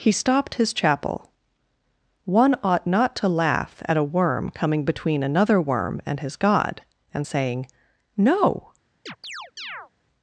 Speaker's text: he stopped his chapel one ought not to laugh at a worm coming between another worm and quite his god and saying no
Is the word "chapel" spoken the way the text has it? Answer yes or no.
yes